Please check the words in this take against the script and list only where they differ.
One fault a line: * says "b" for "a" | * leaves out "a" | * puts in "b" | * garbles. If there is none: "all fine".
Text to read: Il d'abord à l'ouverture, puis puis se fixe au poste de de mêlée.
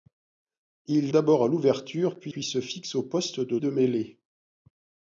all fine